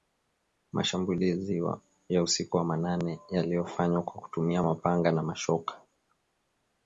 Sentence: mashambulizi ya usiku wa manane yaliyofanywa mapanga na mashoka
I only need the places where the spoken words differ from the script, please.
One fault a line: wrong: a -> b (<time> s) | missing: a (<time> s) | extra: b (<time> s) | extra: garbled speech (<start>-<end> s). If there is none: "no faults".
extra: kwa kutumia (4.0 s)